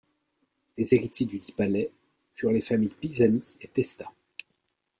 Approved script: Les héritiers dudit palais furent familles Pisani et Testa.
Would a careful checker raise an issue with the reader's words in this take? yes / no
yes